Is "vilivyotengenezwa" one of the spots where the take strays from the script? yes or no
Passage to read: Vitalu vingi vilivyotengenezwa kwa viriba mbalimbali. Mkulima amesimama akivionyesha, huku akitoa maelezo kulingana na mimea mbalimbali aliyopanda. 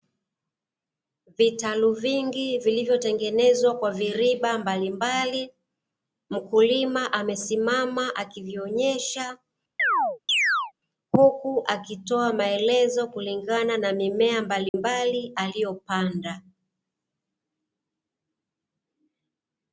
no